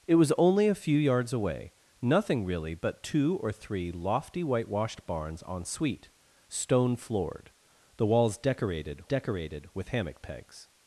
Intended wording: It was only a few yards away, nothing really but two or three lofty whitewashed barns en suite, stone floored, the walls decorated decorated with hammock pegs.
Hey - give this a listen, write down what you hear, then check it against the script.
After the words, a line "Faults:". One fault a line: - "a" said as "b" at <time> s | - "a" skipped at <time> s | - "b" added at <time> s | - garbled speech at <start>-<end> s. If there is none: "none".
It was only a few yards away, nothing really but two or three lofty whitewashed barns en suite, stone floored, the walls decorated decorated with hammock pegs.
Faults:
none